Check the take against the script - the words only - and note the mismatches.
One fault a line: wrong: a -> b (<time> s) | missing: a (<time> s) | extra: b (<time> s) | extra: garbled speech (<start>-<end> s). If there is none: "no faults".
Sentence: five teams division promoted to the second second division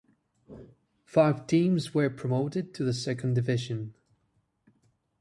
wrong: division -> were (1.9 s)
missing: second (3.4 s)